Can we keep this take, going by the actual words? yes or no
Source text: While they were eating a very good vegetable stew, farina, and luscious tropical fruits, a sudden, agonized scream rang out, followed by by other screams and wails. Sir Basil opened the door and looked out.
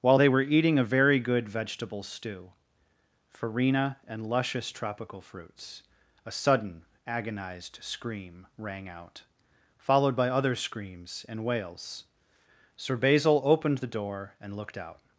no